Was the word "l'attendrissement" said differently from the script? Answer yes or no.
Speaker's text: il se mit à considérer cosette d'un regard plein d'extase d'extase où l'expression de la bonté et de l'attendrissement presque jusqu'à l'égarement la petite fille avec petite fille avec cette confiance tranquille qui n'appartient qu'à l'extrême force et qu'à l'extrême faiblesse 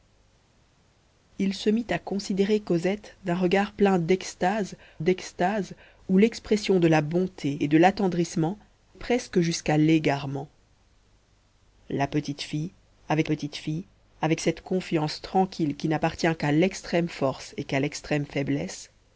no